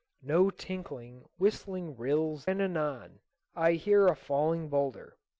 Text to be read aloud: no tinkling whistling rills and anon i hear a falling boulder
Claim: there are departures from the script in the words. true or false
false